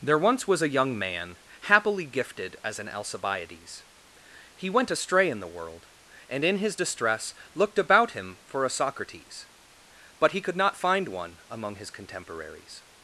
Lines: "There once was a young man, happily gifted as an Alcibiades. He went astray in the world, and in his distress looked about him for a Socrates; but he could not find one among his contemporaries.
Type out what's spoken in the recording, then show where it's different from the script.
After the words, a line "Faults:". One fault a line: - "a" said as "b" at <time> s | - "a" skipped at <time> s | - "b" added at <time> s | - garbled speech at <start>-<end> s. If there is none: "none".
"There once was a young man, happily gifted as an Alcibiades. He went astray in the world, and in his distress looked about him for a Socrates; but he could not find one among his contemporaries.
Faults:
none